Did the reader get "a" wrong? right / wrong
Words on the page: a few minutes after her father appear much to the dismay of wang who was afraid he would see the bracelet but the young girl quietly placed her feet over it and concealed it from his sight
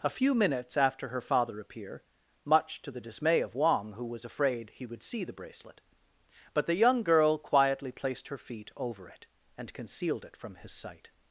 right